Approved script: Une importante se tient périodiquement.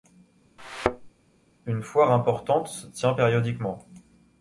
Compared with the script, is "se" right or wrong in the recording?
right